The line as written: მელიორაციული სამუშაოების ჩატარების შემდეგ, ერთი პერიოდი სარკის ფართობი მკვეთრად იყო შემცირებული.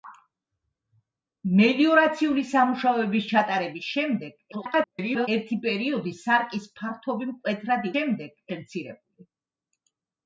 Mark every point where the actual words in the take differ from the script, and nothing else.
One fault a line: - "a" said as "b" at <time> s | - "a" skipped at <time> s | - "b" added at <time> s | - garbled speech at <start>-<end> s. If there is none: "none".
- garbled speech at 4.5-5.3 s
- "იყო" said as "შემდეგ" at 7.9 s